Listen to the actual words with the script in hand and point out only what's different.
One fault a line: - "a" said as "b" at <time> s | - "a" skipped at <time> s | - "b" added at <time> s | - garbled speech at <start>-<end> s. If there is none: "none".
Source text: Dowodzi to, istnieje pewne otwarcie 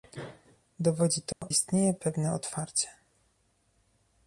none